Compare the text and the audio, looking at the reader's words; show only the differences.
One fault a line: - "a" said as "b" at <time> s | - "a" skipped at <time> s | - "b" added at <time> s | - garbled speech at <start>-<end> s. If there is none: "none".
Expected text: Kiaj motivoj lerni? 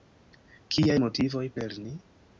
none